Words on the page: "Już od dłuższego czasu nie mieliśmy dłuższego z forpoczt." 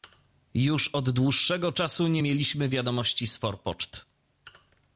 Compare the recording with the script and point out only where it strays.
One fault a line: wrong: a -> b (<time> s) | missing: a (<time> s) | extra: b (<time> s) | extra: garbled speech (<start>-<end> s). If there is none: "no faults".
wrong: dłuższego -> wiadomości (2.7 s)